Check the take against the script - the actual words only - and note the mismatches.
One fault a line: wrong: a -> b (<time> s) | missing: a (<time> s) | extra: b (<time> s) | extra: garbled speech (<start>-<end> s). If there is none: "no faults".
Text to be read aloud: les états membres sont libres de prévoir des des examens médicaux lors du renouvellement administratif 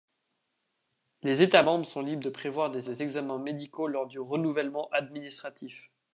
no faults